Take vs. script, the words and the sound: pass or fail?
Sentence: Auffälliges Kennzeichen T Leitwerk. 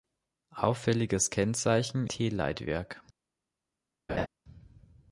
fail